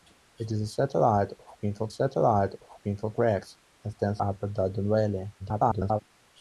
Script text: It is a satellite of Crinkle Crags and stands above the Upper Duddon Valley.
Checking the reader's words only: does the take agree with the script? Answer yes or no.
no